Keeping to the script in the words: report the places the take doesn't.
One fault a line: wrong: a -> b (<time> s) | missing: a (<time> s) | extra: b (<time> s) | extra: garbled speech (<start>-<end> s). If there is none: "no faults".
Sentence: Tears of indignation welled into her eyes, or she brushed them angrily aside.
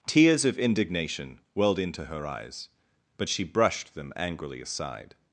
wrong: or -> but (3.2 s)